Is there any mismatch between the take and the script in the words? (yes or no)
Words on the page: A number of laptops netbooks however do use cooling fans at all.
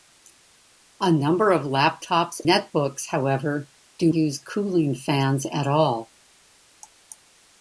no